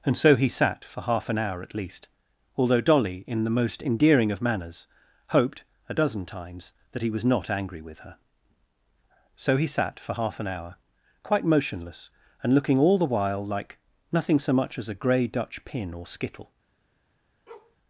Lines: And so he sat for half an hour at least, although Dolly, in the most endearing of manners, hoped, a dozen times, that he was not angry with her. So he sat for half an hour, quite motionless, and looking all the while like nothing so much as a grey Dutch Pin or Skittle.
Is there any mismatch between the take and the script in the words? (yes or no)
no